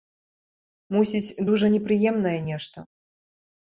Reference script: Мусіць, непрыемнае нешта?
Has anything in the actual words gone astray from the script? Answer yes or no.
yes